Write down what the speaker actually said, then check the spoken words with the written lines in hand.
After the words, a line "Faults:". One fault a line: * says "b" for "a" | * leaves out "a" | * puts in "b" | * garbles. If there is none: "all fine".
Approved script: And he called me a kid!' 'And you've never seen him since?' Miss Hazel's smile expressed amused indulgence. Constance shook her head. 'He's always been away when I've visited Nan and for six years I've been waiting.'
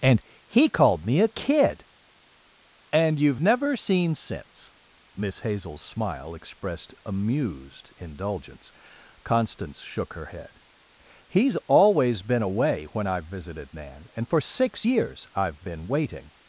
And he called me a kid!' 'And you've never seen since?' Miss Hazel's smile expressed amused indulgence. Constance shook her head. 'He's always been away when I've visited Nan and for six years I've been waiting.'
Faults:
* leaves out "him"